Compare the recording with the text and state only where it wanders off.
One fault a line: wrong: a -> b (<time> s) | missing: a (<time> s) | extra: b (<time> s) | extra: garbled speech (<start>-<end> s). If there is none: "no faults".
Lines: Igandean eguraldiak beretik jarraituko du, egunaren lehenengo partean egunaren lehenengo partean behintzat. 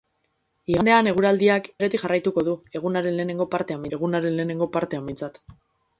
no faults